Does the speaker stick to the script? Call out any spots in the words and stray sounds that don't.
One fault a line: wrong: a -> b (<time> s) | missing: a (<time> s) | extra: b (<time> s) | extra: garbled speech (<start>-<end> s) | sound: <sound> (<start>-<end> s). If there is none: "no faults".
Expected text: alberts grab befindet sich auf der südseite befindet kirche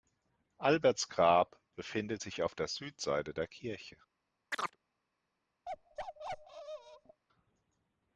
wrong: befindet -> der (3.3 s)
sound: chirp (4.5-4.8 s)
sound: bark (5.7-7.2 s)